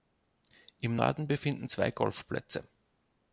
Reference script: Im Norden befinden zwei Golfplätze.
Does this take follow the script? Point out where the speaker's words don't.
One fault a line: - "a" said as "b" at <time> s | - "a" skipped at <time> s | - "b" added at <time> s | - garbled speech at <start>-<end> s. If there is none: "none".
none